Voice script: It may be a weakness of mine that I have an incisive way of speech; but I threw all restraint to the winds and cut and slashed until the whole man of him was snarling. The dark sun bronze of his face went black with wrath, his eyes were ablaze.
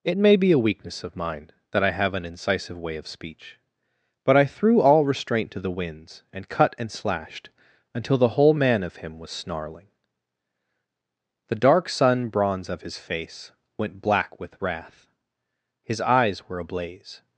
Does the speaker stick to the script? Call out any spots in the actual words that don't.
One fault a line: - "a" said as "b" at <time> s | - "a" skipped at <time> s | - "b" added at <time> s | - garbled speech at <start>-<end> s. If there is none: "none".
none